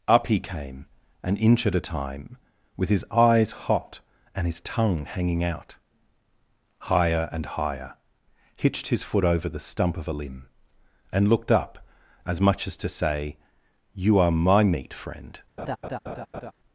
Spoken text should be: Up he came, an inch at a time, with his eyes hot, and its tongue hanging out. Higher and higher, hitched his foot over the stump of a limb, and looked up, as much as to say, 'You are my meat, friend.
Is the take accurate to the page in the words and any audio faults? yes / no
no